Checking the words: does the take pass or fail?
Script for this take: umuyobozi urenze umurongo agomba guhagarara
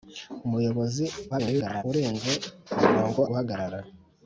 fail